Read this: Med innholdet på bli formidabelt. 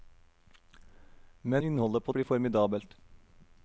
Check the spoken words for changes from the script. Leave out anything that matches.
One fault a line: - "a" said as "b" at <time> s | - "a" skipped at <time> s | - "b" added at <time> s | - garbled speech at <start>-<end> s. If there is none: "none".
none